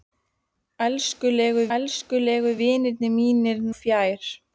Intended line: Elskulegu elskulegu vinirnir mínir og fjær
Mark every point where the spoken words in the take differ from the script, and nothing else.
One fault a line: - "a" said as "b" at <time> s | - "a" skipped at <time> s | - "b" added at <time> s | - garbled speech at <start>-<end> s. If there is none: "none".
none